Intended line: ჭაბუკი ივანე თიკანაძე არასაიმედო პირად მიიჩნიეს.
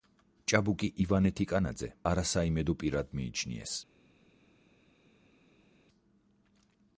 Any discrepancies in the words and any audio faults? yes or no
no